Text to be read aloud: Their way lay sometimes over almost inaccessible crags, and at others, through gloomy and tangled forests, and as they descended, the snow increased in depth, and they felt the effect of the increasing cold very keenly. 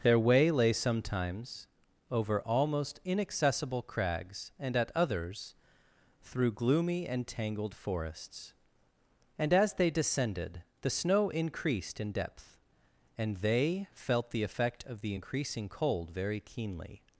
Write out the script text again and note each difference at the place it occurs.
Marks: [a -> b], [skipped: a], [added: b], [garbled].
Their way lay sometimes over almost inaccessible crags, and at others, through gloomy and tangled forests, and as they descended, the snow increased in depth, and they felt the effect of the increasing cold very keenly.